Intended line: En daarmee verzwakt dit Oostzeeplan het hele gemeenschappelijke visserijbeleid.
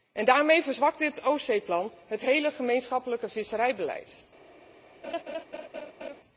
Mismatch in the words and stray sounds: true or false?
true